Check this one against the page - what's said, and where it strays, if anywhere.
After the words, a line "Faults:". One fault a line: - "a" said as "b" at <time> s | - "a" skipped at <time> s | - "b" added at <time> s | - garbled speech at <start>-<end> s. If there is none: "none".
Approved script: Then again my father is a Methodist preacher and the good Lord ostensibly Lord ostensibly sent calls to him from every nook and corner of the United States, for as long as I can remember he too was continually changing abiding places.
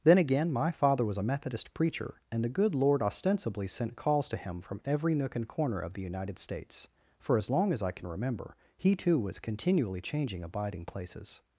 Then again my father was a Methodist preacher and the good Lord ostensibly sent calls to him from every nook and corner of the United States, for as long as I can remember he too was continually changing abiding places.
Faults:
- "is" said as "was" at 1.1 s
- "Lord ostensibly" skipped at 3.7 s